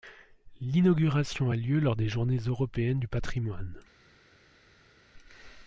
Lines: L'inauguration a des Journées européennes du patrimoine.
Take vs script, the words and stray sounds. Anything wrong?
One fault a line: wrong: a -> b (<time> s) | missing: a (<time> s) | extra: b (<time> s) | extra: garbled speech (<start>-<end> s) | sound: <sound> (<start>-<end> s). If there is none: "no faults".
extra: lieu lors (1.6 s)